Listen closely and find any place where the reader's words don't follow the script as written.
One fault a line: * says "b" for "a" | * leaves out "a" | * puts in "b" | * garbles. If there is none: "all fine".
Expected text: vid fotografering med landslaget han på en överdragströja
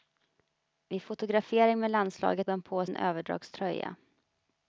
all fine